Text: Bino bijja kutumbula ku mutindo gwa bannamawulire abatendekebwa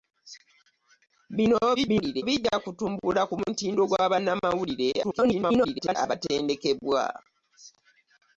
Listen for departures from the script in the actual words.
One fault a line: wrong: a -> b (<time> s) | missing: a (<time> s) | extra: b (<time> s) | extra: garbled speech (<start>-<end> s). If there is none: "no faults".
extra: garbled speech (1.8-2.2 s)
extra: garbled speech (5.0-6.0 s)